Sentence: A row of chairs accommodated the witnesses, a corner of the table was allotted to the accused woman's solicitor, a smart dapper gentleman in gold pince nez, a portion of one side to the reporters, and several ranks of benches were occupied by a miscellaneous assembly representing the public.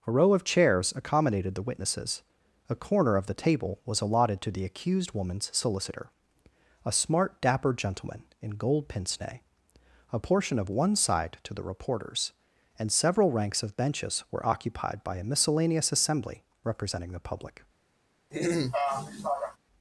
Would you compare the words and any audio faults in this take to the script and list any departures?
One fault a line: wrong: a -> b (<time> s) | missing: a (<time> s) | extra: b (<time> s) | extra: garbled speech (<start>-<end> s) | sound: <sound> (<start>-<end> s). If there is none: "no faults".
sound: throat clearing (18.3-19.6 s)